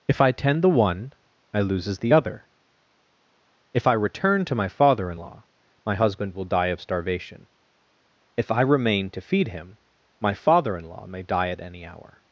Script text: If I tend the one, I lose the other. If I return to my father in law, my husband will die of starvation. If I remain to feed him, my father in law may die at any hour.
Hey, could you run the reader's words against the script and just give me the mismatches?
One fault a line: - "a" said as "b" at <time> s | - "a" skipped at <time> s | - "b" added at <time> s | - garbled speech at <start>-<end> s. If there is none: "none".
- "lose" said as "loses" at 1.6 s